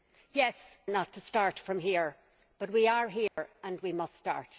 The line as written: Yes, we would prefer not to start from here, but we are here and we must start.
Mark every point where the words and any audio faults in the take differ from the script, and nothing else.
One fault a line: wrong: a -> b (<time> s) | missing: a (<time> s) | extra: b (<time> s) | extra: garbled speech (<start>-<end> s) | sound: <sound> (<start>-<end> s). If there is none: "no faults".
missing: we would prefer (0.6 s)
sound: dropout (3.3-3.4 s)